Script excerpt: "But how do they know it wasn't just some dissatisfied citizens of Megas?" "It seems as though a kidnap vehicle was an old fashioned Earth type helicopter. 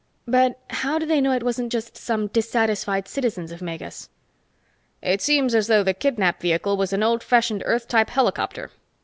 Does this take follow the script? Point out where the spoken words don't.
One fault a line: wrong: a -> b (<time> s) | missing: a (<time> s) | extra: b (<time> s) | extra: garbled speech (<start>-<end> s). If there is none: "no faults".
wrong: a -> the (5.8 s)